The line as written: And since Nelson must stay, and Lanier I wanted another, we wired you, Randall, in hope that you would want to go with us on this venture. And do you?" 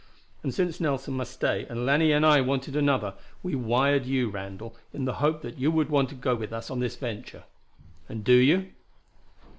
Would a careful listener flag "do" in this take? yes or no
no